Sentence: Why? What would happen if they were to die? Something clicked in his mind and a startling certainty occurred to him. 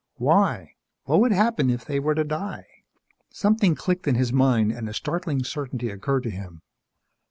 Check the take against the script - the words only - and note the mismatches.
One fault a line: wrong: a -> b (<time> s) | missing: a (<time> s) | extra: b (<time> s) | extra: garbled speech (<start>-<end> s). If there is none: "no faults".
no faults